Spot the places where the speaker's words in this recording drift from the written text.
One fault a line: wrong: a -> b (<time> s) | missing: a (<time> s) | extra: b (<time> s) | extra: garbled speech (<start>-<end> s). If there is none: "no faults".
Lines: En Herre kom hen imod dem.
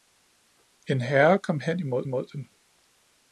extra: imod (2.0 s)